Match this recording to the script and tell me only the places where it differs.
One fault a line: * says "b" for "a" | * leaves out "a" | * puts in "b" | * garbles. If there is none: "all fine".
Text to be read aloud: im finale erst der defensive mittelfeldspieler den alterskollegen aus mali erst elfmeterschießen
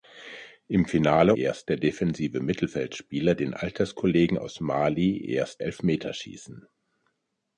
all fine